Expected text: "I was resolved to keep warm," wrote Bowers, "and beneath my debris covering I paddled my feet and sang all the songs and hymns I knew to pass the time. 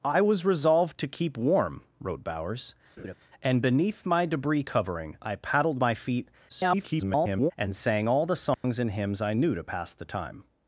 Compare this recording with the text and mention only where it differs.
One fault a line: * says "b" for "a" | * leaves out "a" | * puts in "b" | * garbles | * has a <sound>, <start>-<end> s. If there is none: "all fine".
* has a laugh, 3.0-3.2 s
* garbles
* has a dropout, 8.5-8.6 s